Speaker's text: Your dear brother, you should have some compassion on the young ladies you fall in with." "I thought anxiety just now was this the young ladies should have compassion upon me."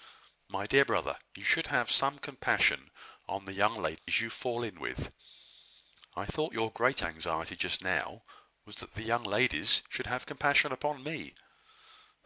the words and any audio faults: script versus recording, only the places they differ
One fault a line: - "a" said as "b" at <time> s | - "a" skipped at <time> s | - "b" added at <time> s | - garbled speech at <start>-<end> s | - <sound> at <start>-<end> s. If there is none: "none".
- "Your" said as "My" at 0.5 s
- dropout at 4.0-4.1 s
- "your great" added at 6.5 s
- "this" said as "that" at 8.8 s